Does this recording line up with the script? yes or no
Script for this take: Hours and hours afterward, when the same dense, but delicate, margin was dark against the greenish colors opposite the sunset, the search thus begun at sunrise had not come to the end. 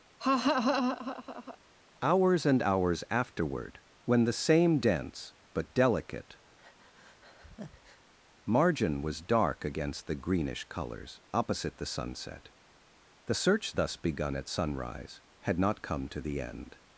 yes